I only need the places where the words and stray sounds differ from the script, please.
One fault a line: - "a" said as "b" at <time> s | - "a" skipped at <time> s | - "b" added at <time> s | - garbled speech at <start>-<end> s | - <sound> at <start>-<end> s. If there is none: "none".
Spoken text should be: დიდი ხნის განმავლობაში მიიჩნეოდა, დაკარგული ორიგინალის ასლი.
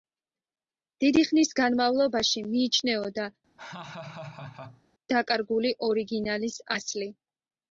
- laugh at 3.6-4.8 s